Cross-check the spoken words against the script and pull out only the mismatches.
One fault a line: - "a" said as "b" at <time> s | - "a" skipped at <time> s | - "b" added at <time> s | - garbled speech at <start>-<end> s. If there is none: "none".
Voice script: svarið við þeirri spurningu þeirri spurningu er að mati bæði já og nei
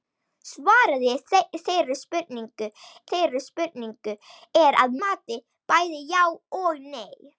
none